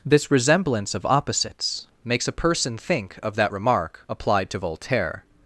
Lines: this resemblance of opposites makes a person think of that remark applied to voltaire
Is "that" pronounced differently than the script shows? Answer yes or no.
no